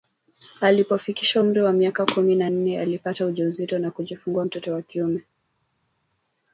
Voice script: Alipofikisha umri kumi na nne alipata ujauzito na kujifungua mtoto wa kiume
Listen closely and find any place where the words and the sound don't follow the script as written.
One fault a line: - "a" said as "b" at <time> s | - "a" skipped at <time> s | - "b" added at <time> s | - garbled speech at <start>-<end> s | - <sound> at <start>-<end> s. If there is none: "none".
- "wa miaka" added at 1.6 s